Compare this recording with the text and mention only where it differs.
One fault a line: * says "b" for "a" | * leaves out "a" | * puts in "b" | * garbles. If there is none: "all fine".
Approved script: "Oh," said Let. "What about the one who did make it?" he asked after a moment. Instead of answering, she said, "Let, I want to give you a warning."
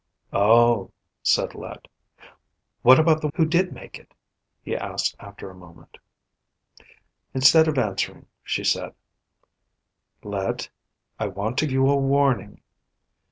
* leaves out "one"
* leaves out "give"